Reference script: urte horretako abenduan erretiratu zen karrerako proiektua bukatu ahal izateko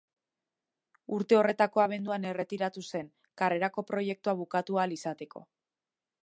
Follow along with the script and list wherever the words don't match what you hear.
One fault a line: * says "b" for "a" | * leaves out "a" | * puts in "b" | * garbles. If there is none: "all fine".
all fine